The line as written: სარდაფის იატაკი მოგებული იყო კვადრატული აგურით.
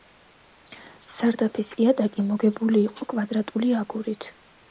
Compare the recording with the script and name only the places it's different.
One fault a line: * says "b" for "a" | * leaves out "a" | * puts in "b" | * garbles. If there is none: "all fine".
all fine